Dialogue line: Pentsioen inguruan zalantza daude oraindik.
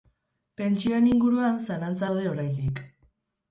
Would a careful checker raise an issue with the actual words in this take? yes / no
no